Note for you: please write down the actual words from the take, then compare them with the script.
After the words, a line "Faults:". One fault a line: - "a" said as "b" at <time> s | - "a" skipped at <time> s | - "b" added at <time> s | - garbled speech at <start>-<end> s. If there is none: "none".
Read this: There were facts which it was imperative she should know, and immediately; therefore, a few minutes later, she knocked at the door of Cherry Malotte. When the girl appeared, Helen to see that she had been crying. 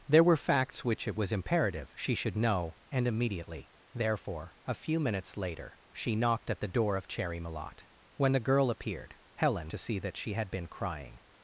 There were facts which it was imperative she should know, and immediately; therefore, a few minutes later, she knocked at the door of Cherry Malotte. When the girl appeared, Helen to see that she had been crying.
Faults:
none